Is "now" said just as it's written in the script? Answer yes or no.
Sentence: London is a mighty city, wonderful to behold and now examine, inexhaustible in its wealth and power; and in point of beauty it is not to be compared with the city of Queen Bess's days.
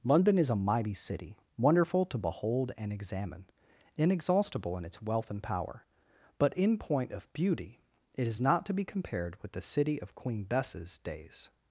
no